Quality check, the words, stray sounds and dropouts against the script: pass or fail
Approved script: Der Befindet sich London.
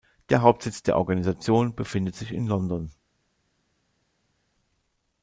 fail